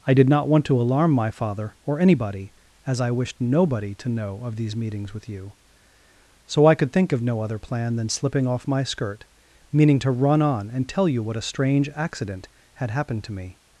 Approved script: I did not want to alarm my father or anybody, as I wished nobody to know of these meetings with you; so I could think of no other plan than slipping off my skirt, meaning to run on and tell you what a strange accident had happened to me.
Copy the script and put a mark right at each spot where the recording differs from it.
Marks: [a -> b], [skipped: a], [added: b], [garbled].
I did not want to alarm my father or anybody, as I wished nobody to know of these meetings with you; so I could think of no other plan than slipping off my skirt, meaning to run on and tell you what a strange accident had happened to me.